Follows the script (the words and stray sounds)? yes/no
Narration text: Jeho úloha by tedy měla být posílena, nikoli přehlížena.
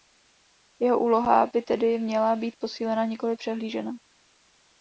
yes